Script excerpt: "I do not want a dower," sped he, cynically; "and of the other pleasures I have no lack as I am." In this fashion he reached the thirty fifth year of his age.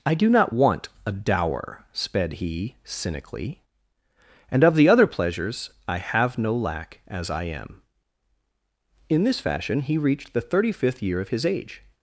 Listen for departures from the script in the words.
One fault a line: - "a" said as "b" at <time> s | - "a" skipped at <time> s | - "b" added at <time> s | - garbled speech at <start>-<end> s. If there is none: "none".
none